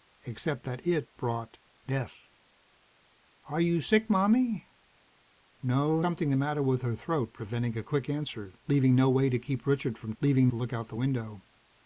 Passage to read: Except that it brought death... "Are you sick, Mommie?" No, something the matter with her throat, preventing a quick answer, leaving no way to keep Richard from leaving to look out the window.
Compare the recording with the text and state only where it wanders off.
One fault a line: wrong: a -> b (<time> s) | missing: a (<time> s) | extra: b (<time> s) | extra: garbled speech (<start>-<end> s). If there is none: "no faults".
no faults